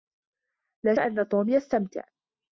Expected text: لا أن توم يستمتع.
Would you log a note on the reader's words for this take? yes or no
no